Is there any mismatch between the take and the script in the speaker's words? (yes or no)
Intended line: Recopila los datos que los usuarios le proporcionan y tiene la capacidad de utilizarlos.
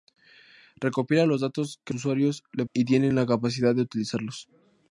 yes